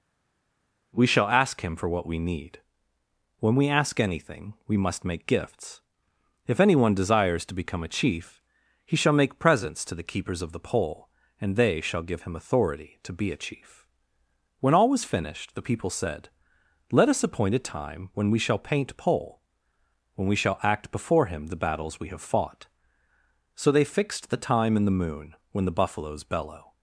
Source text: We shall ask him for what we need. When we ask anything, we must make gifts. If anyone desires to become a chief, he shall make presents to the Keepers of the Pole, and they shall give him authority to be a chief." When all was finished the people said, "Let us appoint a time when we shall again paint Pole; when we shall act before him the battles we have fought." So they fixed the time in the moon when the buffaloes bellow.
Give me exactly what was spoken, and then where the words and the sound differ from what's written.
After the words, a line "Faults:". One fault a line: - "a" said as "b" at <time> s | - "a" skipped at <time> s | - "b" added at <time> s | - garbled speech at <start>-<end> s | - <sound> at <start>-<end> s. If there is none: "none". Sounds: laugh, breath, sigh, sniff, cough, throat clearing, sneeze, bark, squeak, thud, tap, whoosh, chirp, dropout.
We shall ask him for what we need. When we ask anything, we must make gifts. If anyone desires to become a chief, he shall make presents to the Keepers of the Pole, and they shall give him authority to be a chief." When all was finished the people said, "Let us appoint a time when we shall paint Pole; when we shall act before him the battles we have fought." So they fixed the time in the moon when the buffaloes bellow.
Faults:
- "again" skipped at 18.7 s